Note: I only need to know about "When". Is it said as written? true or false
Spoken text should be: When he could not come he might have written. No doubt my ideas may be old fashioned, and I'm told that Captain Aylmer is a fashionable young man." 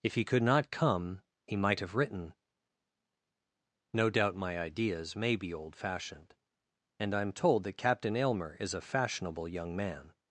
false